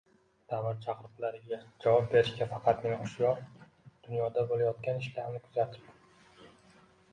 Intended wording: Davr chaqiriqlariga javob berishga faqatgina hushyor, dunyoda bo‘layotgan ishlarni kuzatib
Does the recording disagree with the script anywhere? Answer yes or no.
no